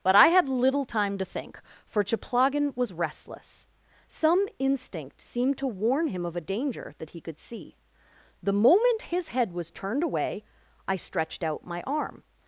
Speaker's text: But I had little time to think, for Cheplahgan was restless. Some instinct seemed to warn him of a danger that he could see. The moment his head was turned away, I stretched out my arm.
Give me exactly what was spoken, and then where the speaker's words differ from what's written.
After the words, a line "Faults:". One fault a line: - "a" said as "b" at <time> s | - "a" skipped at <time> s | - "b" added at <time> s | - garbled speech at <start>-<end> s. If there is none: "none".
But I had little time to think, for Cheplahgan was restless. Some instinct seemed to warn him of a danger that he could see. The moment his head was turned away, I stretched out my arm.
Faults:
none